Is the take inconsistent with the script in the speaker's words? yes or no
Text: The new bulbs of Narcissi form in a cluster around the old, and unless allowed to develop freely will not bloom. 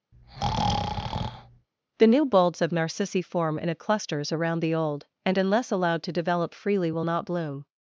yes